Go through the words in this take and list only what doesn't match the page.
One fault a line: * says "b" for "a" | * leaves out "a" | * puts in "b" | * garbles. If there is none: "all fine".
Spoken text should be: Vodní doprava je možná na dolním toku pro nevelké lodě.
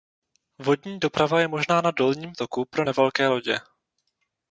all fine